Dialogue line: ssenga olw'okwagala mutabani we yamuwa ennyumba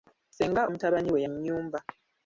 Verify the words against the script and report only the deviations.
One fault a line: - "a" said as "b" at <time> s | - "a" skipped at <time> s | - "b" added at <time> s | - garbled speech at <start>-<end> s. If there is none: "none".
- "olw'okwagala" skipped at 0.6 s
- "yamuwa" skipped at 1.2 s